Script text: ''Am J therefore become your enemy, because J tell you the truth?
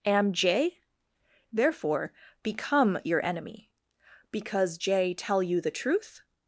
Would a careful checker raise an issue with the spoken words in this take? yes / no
no